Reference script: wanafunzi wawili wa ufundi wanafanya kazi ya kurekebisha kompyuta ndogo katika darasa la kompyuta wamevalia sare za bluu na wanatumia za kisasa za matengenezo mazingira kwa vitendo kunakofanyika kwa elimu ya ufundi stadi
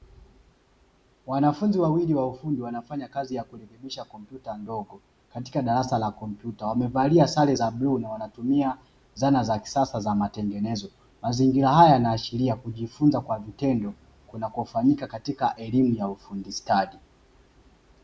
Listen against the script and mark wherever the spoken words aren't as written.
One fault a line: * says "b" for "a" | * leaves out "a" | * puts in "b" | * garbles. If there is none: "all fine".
* puts in "zana"
* puts in "haya yanaashiria kujifunza"
* says "katika" for "kwa"